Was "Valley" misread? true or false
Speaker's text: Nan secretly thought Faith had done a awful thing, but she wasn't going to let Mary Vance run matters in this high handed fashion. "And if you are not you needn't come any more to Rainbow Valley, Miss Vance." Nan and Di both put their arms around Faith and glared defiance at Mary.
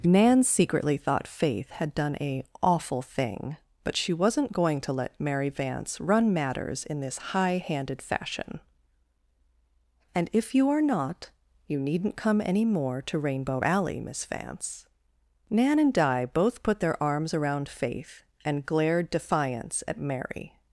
true